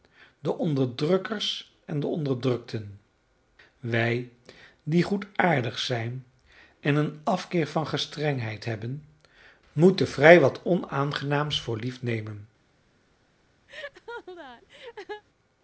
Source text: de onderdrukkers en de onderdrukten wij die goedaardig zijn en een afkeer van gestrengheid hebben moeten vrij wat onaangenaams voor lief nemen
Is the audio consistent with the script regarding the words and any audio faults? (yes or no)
no